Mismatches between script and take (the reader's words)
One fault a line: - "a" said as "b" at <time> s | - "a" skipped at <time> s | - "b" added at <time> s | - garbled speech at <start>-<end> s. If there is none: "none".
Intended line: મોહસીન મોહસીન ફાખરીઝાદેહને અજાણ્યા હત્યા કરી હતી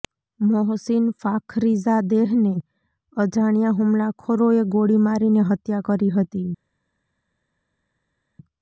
- "મોહસીન" skipped at 1.1 s
- "હુમલાખોરોએ ગોળી મારીને" added at 3.8 s